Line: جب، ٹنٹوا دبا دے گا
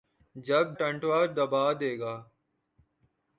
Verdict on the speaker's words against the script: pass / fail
pass